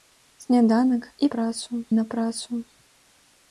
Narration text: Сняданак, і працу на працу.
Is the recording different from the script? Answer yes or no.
no